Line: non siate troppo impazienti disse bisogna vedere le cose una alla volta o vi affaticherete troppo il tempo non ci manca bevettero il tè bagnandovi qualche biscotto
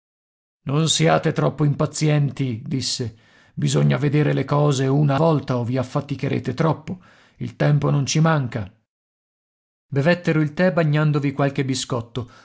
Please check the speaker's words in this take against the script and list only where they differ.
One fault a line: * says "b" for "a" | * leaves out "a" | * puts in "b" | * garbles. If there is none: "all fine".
* leaves out "alla"